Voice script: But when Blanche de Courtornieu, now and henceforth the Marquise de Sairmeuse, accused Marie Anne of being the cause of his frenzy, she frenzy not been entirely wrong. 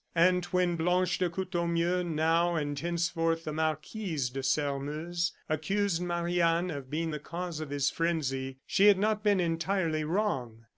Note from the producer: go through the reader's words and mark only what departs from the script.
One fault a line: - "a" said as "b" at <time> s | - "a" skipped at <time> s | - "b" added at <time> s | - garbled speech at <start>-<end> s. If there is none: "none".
- "But" said as "And" at 0.1 s
- "frenzy" said as "had" at 8.9 s